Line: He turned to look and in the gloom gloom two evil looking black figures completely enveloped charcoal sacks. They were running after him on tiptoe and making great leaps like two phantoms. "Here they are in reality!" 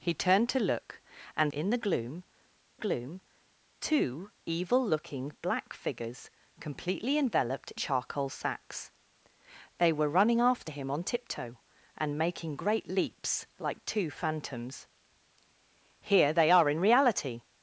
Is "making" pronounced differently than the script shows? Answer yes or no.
no